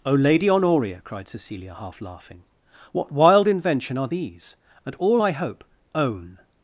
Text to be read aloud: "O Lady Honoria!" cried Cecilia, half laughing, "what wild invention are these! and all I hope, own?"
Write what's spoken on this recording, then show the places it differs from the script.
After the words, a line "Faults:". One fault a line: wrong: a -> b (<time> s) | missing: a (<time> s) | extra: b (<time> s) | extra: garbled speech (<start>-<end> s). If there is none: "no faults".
"O Lady Honoria!" cried Cecilia, half laughing, "what wild invention are these! and all I hope, own?"
Faults:
no faults